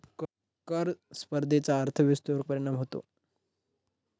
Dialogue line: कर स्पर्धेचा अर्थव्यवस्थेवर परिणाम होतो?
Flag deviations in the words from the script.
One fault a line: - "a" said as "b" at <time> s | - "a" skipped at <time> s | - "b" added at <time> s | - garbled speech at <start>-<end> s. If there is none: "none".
none